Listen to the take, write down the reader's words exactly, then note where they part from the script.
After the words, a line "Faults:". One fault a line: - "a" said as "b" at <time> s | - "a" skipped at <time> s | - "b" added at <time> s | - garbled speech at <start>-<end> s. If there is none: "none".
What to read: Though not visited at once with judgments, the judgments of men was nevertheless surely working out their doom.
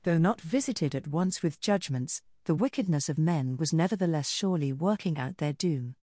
Though not visited at once with judgments, the wickedness of men was nevertheless surely working out their doom.
Faults:
- "judgments" said as "wickedness" at 2.5 s